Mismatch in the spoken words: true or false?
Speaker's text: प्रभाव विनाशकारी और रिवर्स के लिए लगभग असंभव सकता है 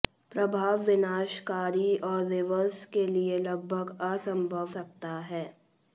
false